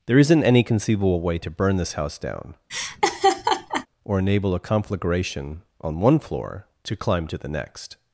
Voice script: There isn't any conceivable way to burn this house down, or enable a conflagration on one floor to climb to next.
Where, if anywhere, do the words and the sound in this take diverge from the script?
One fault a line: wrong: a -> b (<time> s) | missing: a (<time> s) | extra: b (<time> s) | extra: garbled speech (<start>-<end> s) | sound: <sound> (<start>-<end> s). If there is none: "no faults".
sound: laugh (2.7-3.9 s)
extra: the (7.4 s)